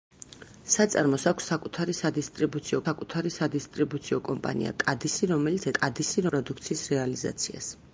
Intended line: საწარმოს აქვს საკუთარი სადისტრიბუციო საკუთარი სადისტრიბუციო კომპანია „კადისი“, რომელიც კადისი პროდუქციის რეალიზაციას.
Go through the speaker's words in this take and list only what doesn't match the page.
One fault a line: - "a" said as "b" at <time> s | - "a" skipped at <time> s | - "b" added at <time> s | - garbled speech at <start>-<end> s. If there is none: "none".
none